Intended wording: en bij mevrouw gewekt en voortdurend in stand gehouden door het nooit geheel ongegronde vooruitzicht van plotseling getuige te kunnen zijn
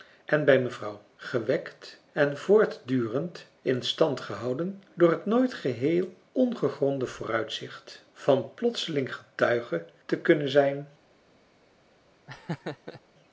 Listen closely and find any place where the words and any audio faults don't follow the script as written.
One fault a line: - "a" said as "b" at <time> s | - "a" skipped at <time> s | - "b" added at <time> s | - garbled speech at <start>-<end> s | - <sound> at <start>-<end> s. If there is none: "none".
- laugh at 12.3-13.0 s